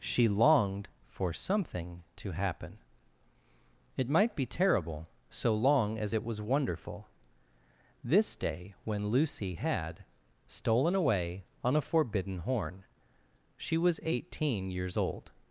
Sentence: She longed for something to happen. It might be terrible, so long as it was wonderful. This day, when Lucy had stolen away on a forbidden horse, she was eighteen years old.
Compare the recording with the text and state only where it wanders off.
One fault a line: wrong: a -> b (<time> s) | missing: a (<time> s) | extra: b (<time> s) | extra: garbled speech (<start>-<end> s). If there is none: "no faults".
wrong: horse -> horn (12.4 s)